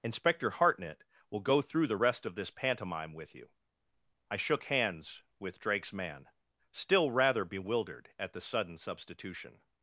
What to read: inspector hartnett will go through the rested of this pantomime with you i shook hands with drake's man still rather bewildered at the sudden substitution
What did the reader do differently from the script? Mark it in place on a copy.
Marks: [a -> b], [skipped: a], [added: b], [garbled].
inspector hartnett will go through the [rested -> rest] of this pantomime with you i shook hands with drake's man still rather bewildered at the sudden substitution